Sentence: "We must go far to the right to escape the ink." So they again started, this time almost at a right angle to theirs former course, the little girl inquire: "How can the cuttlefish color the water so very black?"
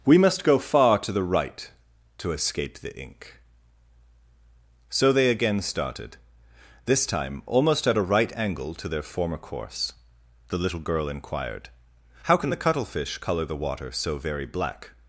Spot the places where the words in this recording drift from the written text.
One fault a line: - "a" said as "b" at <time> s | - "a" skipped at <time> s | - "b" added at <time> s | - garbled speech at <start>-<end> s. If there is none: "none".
- "theirs" said as "their" at 8.9 s
- "inquire" said as "inquired" at 11.1 s